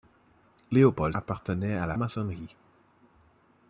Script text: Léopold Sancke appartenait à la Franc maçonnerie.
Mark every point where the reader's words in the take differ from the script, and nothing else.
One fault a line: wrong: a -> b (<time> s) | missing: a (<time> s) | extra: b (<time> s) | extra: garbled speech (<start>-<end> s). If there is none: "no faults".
missing: Sancke (1.1 s)
missing: Franc (2.0 s)